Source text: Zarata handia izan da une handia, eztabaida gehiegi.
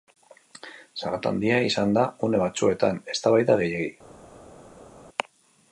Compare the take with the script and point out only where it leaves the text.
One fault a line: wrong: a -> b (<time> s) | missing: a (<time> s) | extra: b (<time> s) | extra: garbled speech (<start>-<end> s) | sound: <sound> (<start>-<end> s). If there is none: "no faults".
wrong: handia -> batzuetan (2.5 s)